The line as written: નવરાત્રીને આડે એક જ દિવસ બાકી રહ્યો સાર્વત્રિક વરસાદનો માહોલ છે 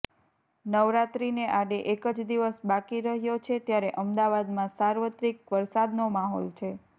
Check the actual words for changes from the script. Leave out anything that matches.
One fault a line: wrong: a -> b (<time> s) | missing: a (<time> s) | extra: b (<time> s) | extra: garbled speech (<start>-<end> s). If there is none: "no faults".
extra: છે ત્યારે અમદાવાદમાં (3.4 s)